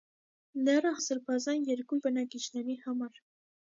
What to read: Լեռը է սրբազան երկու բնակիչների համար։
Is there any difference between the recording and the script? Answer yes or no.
no